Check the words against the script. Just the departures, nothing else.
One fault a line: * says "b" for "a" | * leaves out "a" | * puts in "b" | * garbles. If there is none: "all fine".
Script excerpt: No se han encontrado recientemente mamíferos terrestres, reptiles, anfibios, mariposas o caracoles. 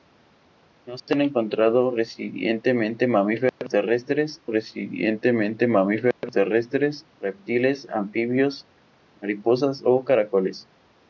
* puts in "recientemente mamíferos terrestres"